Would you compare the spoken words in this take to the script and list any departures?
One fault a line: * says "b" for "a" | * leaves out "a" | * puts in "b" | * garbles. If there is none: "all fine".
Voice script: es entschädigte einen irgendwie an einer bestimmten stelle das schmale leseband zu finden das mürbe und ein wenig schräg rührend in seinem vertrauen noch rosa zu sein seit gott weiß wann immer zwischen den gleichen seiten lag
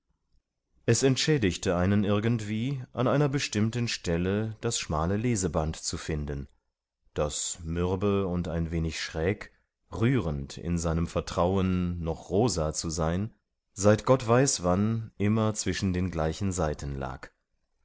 all fine